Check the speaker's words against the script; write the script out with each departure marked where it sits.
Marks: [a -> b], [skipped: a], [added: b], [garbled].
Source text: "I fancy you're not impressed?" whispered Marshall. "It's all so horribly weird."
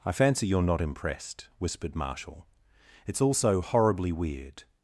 "I fancy you're not impressed?" whispered Marshall. "It's all so horribly weird."